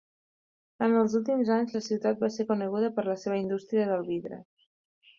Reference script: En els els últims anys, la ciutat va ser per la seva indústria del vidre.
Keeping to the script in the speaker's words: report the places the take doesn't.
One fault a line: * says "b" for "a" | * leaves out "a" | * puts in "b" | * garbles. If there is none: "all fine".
* leaves out "els"
* puts in "coneguda"